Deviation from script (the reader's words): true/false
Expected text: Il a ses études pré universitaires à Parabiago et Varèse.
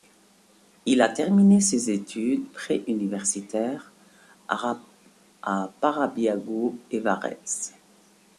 true